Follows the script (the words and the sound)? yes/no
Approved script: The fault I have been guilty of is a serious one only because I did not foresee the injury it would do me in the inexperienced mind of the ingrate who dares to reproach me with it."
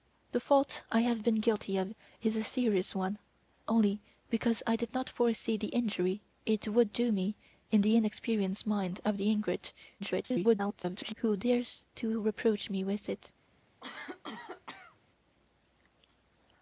no